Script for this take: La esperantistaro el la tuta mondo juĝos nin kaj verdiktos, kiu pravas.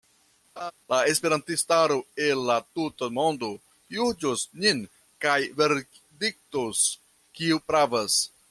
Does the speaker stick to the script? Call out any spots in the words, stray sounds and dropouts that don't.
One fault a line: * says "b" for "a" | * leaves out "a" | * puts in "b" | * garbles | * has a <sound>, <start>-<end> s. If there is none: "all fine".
* has a laugh, 0.6-0.7 s